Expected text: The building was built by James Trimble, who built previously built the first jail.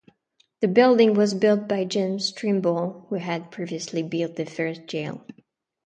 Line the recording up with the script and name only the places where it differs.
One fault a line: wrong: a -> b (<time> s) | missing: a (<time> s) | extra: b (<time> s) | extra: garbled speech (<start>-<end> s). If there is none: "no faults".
wrong: built -> had (3.2 s)